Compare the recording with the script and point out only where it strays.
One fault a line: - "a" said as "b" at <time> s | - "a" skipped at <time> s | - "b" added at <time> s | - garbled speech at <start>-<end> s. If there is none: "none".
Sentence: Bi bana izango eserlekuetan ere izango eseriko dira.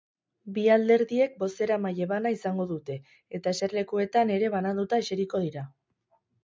- "alderdiek bozeramaile" added at 0.8 s
- "dute eta" added at 2.7 s
- "izango" said as "bananduta" at 4.6 s